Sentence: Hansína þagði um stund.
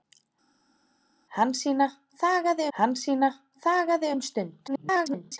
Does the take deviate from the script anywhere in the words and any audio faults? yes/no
yes